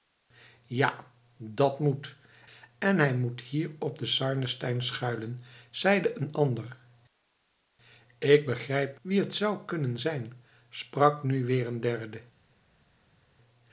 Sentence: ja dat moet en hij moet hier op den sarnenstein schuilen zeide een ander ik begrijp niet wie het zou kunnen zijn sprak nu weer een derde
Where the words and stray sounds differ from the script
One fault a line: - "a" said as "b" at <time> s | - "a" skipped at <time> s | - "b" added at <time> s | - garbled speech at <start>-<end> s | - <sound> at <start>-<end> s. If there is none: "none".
- "niet" skipped at 9.0 s